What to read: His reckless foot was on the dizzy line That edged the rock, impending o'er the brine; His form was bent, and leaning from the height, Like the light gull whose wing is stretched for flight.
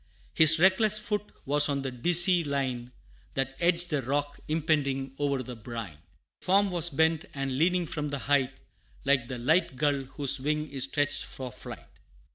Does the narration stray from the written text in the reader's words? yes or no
yes